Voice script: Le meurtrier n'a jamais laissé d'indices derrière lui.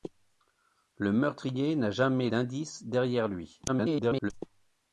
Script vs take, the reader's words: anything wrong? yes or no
yes